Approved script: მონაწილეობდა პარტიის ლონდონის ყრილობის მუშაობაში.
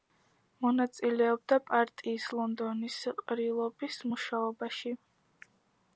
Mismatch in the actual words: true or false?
false